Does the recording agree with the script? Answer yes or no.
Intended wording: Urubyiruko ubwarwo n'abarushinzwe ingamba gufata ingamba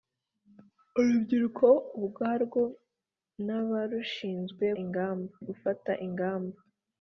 yes